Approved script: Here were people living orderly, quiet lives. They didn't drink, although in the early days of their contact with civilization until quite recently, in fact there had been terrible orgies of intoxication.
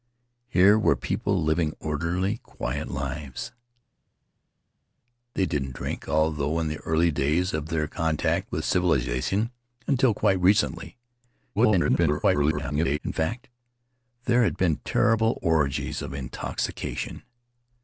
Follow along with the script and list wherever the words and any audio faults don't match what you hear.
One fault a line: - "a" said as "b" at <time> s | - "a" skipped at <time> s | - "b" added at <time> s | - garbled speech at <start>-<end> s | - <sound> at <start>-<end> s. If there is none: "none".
- garbled speech at 11.5-13.0 s